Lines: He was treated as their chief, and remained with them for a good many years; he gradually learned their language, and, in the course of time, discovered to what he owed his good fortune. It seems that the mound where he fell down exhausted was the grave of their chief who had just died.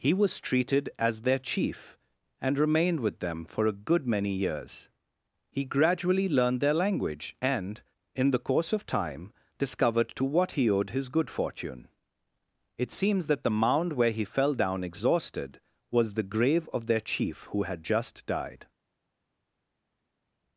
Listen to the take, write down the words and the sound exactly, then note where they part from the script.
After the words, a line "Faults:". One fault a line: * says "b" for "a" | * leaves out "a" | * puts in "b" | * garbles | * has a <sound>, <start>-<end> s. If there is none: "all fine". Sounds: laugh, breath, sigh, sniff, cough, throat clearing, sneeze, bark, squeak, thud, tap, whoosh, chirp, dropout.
He was treated as their chief, and remained with them for a good many years; he gradually learned their language, and, in the course of time, discovered to what he owed his good fortune. It seems that the mound where he fell down exhausted was the grave of their chief who had just died.
Faults:
all fine